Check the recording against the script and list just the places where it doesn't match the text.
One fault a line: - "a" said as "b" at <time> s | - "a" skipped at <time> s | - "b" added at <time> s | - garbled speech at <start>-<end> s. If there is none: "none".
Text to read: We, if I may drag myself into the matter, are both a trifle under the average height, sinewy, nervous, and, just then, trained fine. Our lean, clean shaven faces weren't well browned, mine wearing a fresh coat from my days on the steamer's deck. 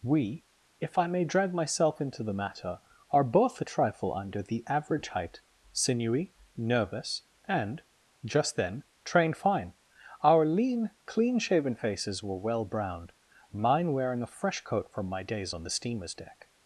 - "weren't" said as "were" at 12.2 s